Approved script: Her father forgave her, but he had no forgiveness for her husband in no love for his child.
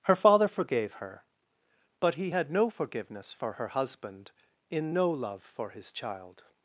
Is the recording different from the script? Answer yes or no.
no